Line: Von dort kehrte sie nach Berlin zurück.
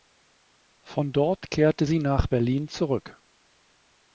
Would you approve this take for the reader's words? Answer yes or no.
yes